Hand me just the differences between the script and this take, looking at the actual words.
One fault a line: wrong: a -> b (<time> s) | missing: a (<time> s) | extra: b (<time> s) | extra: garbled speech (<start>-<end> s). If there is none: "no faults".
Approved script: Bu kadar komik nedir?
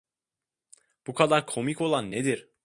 extra: olan (1.8 s)